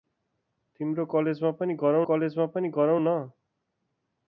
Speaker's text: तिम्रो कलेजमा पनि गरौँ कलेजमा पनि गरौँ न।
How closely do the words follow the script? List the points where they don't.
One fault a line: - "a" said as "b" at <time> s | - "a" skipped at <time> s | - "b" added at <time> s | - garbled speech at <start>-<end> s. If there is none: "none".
none